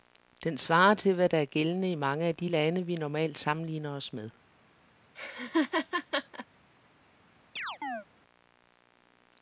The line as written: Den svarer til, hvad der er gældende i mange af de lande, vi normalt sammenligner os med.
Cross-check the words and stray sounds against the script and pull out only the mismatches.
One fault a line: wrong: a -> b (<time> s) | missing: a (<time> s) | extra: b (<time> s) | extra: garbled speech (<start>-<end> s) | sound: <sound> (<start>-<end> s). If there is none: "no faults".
sound: laugh (5.1-6.5 s)
sound: chirp (7.6-8.1 s)